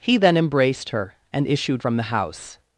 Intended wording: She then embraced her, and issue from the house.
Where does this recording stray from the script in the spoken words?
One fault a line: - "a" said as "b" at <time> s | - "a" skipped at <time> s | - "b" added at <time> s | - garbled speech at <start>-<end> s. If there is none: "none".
- "She" said as "He" at 0.0 s
- "issue" said as "issued" at 1.4 s